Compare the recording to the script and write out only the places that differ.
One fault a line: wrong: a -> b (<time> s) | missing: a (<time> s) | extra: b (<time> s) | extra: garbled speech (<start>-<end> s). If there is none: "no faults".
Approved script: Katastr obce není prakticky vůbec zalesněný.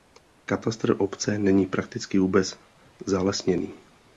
no faults